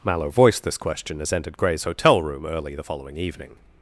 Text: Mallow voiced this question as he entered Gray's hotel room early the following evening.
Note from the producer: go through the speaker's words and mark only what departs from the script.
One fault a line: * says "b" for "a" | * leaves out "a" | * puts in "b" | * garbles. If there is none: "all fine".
* leaves out "he"